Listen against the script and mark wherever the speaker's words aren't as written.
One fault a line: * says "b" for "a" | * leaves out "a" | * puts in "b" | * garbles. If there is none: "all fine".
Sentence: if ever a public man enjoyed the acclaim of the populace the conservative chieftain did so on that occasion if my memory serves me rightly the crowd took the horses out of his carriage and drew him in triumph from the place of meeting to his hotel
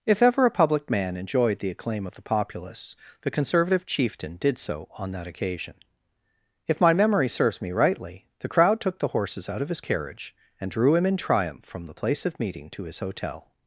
all fine